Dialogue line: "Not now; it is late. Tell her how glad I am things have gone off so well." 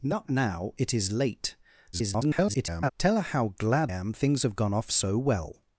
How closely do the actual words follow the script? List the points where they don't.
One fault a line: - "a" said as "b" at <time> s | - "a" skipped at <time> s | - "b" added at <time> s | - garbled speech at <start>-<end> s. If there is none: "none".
- garbled speech at 1.9-2.9 s
- "I" skipped at 3.9 s